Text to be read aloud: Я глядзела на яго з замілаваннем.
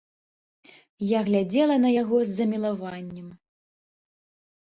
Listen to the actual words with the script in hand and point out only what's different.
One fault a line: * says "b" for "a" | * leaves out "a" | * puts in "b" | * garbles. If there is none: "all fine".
all fine